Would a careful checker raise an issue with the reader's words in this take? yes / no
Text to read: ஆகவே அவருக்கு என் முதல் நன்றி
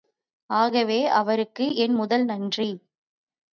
no